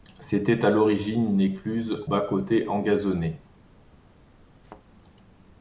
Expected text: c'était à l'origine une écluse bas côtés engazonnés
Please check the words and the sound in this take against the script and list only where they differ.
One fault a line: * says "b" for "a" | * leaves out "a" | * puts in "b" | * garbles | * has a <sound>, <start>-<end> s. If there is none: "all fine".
* has a thud, 4.6-4.8 s